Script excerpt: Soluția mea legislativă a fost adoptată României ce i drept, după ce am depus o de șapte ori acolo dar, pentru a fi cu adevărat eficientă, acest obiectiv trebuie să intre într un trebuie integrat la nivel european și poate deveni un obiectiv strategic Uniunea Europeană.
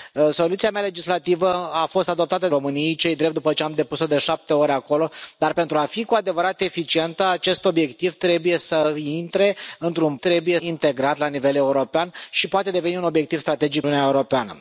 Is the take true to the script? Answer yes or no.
yes